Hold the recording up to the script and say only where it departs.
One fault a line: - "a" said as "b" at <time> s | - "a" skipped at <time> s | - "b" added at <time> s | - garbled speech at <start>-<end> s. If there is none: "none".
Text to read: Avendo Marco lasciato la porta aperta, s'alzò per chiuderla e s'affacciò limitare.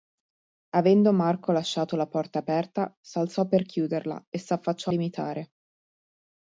none